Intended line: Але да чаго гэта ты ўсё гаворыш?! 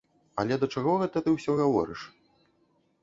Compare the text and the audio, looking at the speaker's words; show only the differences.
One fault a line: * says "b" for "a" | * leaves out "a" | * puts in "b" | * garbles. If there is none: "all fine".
all fine